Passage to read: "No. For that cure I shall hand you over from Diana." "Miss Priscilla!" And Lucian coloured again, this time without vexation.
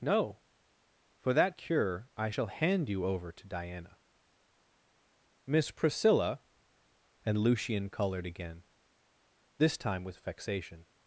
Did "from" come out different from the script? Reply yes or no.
yes